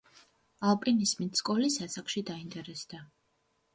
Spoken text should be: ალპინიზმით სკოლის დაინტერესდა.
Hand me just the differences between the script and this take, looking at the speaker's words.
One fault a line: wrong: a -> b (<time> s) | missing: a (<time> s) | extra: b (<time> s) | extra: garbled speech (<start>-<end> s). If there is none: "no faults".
extra: ასაკში (1.9 s)